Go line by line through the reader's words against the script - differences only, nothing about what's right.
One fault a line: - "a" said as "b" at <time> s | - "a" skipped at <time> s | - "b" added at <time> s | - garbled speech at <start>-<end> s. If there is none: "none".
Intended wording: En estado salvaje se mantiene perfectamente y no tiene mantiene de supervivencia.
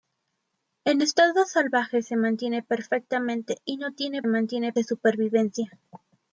none